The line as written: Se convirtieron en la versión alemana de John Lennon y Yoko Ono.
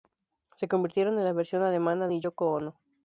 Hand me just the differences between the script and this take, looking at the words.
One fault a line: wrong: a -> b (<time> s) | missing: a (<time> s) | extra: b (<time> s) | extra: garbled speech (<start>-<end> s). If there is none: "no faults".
missing: de John Lennon (2.1 s)